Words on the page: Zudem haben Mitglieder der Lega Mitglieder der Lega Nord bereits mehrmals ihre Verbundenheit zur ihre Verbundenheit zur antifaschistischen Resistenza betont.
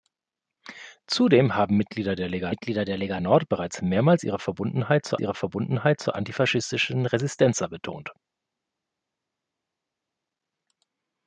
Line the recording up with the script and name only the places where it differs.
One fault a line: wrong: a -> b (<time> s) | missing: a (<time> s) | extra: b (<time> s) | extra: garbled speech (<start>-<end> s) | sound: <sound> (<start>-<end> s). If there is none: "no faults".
no faults